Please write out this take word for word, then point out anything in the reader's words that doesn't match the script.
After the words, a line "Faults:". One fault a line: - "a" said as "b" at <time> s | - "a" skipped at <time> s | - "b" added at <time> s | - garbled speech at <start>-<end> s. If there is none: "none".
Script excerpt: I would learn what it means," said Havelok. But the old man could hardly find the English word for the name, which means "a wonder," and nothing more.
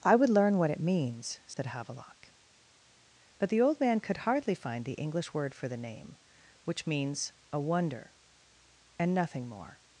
I would learn what it means," said Havelok. But the old man could hardly find the English word for the name, which means "a wonder," and nothing more.
Faults:
none